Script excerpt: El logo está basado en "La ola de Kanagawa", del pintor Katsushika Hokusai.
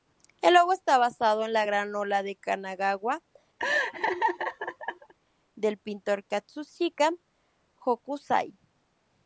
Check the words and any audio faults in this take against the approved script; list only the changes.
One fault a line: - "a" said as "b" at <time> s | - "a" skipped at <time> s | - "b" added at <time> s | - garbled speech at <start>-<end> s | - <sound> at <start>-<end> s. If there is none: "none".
- "gran" added at 1.7 s
- laugh at 3.6-5.1 s